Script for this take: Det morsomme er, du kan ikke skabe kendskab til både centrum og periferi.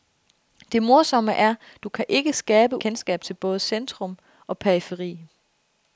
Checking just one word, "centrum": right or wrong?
right